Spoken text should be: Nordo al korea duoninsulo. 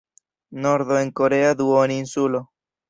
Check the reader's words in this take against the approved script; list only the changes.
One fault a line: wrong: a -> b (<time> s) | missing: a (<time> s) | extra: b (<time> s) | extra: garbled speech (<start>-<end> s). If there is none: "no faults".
wrong: al -> en (1.0 s)